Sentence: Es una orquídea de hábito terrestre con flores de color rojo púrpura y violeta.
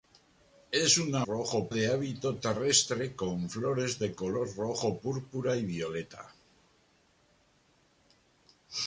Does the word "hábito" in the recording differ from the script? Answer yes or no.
no